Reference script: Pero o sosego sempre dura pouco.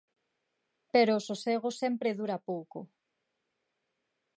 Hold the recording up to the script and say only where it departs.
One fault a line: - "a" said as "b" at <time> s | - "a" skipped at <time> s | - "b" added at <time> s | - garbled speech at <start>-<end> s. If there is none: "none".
none